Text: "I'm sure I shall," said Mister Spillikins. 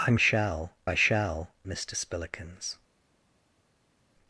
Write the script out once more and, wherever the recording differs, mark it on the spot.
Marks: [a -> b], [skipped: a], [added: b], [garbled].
"I'm [sure -> shall] I shall," [skipped: said] Mister Spillikins.